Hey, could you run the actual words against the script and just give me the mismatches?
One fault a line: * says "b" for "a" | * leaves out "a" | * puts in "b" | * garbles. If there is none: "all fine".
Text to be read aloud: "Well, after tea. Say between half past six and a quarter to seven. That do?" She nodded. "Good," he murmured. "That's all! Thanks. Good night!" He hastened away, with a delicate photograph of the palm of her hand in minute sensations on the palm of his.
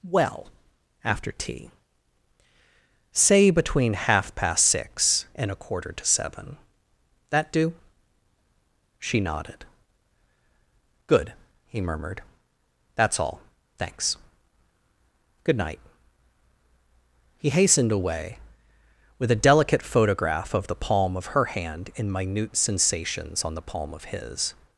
all fine